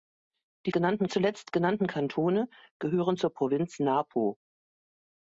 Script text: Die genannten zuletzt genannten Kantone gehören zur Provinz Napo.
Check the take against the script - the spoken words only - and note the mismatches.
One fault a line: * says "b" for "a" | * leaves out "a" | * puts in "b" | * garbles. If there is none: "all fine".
all fine